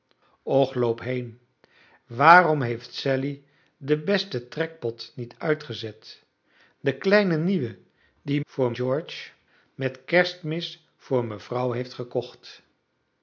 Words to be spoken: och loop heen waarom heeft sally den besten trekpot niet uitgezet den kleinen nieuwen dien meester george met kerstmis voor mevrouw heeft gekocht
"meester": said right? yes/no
no